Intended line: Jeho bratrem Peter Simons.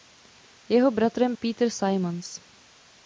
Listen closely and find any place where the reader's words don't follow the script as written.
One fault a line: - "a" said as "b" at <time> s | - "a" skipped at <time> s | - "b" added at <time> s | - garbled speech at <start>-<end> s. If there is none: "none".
none